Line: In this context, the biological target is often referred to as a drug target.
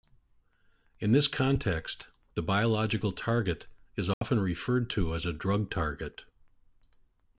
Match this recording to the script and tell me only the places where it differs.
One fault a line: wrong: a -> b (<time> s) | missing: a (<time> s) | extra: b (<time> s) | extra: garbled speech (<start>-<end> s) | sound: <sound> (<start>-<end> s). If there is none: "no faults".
sound: dropout (4.1-4.2 s)